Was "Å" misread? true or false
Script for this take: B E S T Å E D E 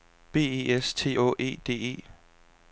false